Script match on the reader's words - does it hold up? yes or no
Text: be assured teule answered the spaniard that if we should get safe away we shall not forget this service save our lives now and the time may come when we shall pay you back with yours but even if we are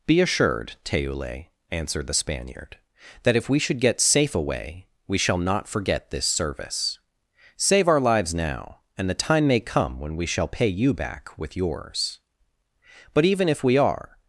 yes